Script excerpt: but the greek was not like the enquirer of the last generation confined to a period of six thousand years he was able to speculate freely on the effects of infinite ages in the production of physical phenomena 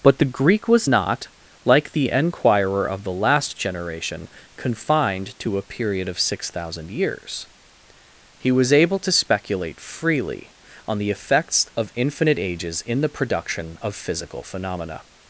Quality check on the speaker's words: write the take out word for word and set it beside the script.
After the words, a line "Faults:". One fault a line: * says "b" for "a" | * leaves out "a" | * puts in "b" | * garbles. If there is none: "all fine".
but the greek was not like the enquirer of the last generation confined to a period of six thousand years he was able to speculate freely on the effects of infinite ages in the production of physical phenomena
Faults:
all fine